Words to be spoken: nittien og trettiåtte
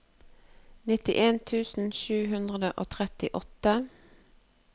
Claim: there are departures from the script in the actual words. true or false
true